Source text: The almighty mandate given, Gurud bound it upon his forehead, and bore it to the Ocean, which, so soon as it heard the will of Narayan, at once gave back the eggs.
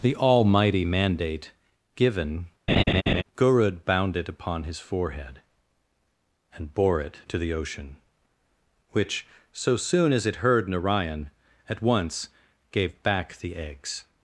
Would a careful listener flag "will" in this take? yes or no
yes